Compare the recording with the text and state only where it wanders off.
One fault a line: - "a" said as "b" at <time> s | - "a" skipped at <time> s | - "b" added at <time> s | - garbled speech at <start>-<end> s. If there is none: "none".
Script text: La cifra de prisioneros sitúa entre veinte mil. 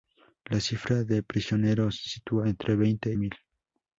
none